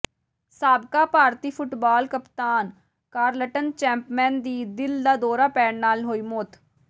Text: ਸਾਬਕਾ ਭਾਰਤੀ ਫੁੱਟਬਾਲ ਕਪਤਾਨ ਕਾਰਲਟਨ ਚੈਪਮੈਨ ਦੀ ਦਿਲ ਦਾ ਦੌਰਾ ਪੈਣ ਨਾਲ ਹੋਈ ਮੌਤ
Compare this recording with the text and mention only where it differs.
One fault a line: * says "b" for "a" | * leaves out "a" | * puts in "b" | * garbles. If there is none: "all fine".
all fine